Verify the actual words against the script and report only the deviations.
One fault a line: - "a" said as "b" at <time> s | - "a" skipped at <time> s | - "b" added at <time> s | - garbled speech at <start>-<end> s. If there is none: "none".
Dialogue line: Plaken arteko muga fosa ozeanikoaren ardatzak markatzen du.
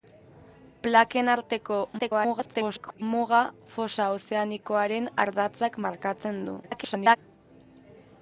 - garbled speech at 2.0-3.0 s
- garbled speech at 6.6-7.2 s